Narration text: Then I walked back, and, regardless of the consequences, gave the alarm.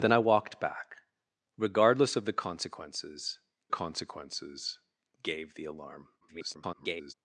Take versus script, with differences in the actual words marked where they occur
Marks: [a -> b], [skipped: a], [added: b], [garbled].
Then I walked back, [skipped: and,] regardless of the consequences, [added: consequences] gave the alarm. [garbled]